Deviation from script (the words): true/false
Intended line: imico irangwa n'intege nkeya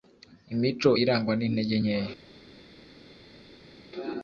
false